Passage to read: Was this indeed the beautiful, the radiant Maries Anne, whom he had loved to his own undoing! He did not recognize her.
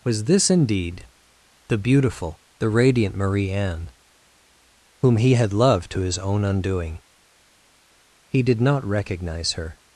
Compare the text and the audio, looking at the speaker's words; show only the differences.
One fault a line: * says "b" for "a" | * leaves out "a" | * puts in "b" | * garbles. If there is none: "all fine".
* says "Marie" for "Maries"